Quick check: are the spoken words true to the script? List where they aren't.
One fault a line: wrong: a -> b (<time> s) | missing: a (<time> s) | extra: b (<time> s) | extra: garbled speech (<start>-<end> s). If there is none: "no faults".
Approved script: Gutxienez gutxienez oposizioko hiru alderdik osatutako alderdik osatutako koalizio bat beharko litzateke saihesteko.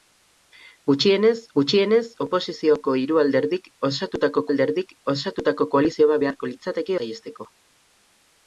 no faults